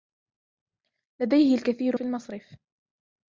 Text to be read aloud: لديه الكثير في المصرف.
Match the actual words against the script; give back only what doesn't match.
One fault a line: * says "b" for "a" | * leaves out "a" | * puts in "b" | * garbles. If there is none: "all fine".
all fine